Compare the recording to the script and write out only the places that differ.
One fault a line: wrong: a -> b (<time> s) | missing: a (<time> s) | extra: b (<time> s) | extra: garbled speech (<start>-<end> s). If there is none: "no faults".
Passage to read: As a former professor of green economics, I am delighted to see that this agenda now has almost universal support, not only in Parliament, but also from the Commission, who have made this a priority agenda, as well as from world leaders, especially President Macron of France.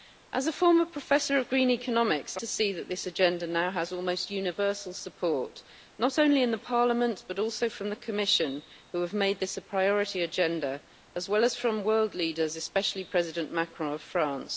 missing: am delighted (2.4 s)